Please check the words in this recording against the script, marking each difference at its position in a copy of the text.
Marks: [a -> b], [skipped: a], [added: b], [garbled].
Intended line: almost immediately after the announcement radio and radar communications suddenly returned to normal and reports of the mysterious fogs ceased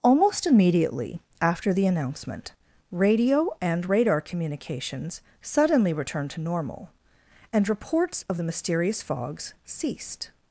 almost immediately after the announcement radio and radar communications suddenly returned to normal and reports of the mysterious fogs ceased